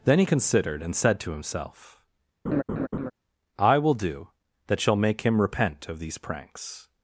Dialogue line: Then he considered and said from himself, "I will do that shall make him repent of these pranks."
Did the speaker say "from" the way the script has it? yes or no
no